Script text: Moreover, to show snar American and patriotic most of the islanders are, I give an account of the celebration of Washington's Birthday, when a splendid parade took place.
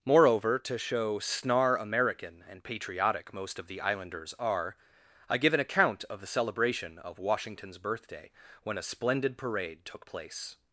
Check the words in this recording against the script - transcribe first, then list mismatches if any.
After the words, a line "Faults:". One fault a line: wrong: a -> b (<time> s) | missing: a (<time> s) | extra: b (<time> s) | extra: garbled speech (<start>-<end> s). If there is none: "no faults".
Moreover, to show snar American and patriotic most of the islanders are, I give an account of the celebration of Washington's Birthday, when a splendid parade took place.
Faults:
no faults